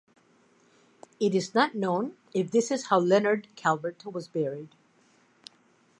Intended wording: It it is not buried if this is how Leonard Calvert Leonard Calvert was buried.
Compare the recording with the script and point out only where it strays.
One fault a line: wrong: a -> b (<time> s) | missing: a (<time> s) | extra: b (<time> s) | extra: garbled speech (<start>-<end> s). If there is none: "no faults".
missing: it (1.4 s)
wrong: buried -> known (1.8 s)
missing: Leonard Calvert (4.0 s)